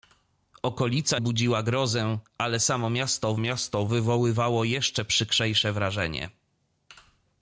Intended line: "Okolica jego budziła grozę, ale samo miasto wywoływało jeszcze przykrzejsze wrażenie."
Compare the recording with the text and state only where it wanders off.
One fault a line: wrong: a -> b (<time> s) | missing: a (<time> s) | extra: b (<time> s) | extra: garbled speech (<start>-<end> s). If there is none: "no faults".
missing: jego (1.2 s)
extra: miasto (3.4 s)